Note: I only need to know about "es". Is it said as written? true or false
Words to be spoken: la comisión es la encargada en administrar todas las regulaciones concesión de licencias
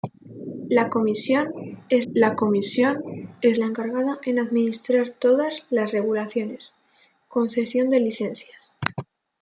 true